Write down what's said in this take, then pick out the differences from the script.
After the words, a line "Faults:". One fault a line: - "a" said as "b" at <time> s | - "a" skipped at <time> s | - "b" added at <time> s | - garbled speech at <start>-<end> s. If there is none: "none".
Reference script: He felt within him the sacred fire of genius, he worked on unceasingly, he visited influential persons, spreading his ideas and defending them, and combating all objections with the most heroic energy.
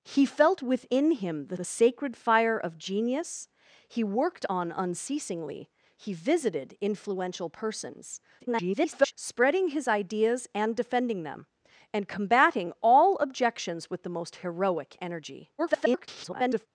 He felt within him the the sacred fire of genius, he worked on unceasingly, he visited influential persons, [garbled] spreading his ideas and defending them, and combating all objections with the most heroic energy. [garbled]
Faults:
- "the" added at 1.5 s
- garbled speech at 8.4-9.1 s
- garbled speech at 15.6-16.7 s